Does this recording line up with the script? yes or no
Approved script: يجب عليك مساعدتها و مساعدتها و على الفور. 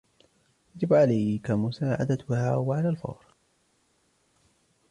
no